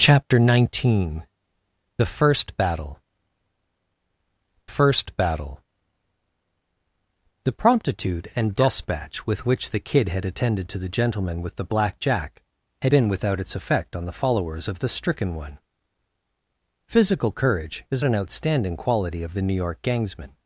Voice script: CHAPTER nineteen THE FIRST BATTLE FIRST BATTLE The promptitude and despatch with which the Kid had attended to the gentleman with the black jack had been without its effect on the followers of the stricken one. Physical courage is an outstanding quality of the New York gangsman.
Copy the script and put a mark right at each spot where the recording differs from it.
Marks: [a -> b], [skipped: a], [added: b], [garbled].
CHAPTER nineteen THE FIRST BATTLE FIRST BATTLE The promptitude and despatch with which the Kid had attended to the gentleman with the black jack had been without its effect on the followers of the stricken one. Physical courage is an outstanding quality of the New York gangsman.